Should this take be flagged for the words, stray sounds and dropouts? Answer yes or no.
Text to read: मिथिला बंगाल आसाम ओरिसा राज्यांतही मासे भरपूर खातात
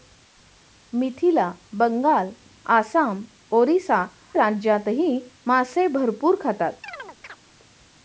yes